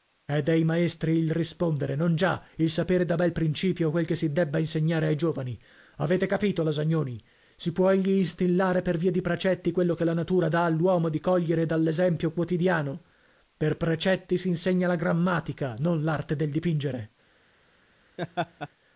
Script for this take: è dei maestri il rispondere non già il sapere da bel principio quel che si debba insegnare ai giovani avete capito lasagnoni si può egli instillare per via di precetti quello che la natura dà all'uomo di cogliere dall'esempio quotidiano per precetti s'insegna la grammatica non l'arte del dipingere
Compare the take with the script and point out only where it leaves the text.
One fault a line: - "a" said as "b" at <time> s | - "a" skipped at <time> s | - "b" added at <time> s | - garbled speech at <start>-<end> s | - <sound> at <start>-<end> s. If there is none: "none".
- laugh at 18.2-18.7 s